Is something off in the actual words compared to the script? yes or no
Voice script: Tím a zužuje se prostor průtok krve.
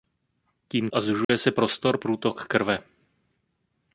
no